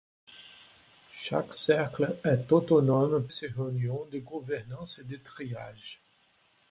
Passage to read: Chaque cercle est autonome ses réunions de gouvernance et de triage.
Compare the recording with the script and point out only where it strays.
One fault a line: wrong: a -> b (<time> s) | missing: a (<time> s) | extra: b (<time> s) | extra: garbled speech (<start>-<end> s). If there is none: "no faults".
no faults